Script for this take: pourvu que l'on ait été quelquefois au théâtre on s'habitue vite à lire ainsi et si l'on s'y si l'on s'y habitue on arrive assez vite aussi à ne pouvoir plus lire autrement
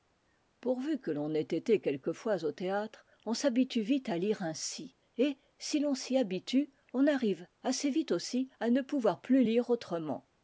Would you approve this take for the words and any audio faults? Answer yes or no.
no